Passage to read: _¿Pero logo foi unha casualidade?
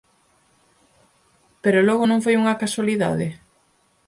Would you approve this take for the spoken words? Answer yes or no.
no